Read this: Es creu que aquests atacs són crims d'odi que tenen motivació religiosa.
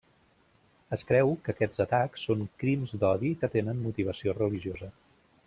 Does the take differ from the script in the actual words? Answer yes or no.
no